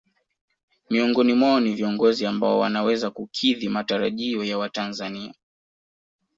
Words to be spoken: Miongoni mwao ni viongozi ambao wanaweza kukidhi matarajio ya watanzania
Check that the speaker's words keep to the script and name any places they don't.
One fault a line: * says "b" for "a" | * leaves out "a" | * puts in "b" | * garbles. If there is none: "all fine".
all fine